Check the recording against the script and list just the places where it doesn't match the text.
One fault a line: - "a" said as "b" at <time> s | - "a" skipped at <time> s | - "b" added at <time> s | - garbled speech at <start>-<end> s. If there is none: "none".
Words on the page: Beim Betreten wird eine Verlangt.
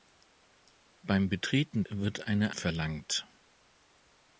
none